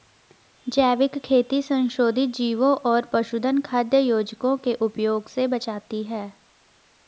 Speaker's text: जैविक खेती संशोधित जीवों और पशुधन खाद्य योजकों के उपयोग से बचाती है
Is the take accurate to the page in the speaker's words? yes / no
yes